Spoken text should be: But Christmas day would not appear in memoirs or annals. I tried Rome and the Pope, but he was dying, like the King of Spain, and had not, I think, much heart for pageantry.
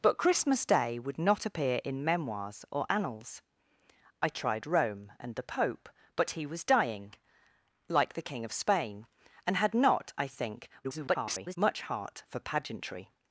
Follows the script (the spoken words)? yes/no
no